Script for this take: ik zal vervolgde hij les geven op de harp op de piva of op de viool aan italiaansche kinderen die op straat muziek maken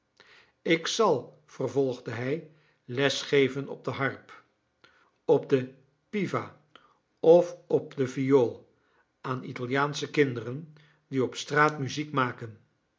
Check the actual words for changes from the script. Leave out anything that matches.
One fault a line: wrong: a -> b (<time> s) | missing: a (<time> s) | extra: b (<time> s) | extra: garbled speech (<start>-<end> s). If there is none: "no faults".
no faults